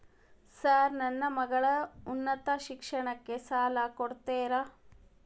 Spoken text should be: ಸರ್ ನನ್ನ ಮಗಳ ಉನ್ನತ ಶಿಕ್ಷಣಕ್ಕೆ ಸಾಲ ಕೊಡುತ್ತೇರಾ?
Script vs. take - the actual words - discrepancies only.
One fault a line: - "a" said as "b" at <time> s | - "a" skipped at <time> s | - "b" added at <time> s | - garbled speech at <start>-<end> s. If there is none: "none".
none